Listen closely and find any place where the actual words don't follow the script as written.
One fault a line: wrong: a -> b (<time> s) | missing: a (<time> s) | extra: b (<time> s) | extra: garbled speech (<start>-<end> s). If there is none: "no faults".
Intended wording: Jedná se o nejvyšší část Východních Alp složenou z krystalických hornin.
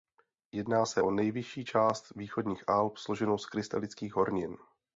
no faults